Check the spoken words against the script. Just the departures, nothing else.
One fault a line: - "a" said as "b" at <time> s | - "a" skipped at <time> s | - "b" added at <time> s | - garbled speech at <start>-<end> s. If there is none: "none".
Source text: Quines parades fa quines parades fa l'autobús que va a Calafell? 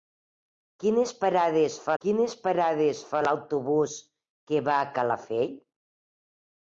none